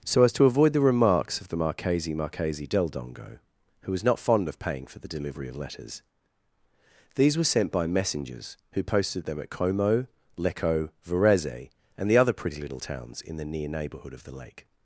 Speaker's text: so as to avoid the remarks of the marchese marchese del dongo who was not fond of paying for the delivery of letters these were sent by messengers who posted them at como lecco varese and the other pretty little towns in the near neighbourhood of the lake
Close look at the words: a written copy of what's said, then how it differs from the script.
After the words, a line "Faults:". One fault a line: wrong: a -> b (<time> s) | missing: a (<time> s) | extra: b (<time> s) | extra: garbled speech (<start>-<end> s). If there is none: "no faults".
so as to avoid the remarks of the marchese marchese del dongo who was not fond of paying for the delivery of letters these were sent by messengers who posted them at como lecco varese and the other pretty little towns in the near neighbourhood of the lake
Faults:
no faults